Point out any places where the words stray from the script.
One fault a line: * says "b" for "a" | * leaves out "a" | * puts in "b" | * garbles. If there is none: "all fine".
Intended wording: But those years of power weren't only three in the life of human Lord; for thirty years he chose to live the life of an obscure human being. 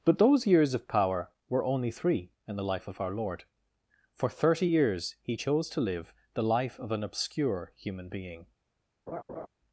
* says "were" for "weren't"
* says "our" for "human"